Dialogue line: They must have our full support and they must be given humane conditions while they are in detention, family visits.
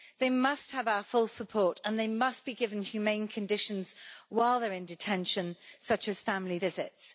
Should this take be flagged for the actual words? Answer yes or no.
yes